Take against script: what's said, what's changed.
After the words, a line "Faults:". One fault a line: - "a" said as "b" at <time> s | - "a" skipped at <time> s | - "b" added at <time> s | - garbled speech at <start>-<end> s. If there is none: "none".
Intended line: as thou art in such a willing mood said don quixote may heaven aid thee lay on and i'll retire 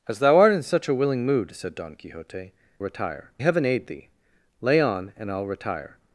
as thou art in such a willing mood said don quixote retire heaven aid thee lay on and i'll retire
Faults:
- "may" said as "retire" at 2.8 s